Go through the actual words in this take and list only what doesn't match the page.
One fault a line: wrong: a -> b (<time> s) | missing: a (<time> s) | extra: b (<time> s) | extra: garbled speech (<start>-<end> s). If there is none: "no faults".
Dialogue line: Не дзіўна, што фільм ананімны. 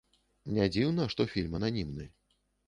no faults